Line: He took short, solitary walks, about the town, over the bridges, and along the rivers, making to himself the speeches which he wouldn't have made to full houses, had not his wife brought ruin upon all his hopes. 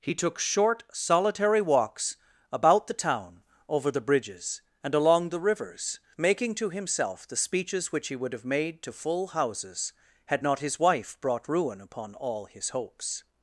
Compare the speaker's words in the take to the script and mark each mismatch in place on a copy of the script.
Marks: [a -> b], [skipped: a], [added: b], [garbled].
He took short, solitary walks, about the town, over the bridges, and along the rivers, making to himself the speeches which he [wouldn't -> would] have made to full houses, had not his wife brought ruin upon all his hopes.